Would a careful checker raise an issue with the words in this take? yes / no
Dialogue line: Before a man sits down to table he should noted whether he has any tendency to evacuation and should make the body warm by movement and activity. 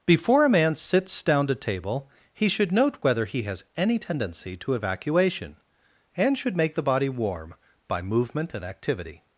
yes